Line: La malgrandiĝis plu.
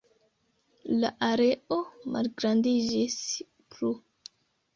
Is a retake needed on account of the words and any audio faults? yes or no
yes